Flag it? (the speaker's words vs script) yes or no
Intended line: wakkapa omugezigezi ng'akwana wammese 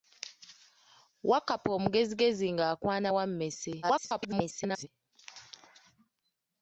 yes